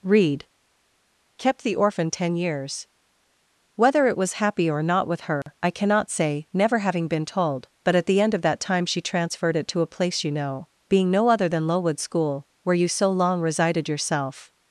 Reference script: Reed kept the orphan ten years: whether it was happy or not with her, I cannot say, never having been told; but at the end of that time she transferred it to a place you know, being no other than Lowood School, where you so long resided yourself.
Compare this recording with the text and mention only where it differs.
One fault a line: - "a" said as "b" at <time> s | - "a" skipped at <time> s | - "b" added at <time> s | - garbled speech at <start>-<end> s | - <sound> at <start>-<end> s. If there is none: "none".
- dropout at 5.4-5.5 s